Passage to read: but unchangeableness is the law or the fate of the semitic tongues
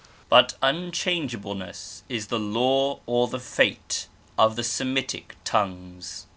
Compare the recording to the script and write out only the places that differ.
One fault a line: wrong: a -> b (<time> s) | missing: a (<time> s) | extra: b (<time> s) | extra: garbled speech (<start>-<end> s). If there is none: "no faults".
no faults